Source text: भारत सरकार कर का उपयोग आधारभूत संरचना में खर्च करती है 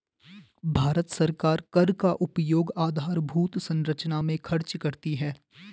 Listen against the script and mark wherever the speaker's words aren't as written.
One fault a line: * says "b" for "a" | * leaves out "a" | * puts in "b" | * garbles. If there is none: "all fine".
all fine